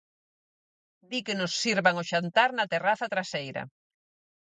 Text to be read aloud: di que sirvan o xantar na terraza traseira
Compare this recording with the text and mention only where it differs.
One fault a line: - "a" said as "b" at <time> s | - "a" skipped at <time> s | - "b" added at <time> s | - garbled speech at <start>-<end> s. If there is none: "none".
- "nos" added at 1.4 s